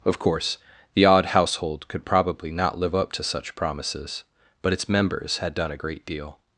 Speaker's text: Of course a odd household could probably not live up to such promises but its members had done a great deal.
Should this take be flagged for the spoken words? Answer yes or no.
yes